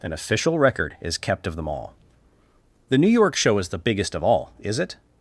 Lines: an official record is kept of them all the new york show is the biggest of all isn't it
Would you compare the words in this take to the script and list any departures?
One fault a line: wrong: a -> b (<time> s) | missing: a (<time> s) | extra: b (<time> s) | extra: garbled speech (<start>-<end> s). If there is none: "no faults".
wrong: isn't -> is (4.6 s)